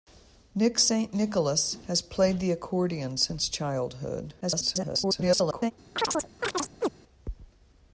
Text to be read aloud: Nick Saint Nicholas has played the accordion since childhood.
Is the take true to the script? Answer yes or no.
no